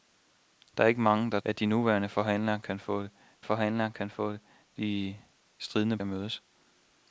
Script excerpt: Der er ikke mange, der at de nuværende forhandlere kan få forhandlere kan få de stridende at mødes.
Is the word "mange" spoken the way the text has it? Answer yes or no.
yes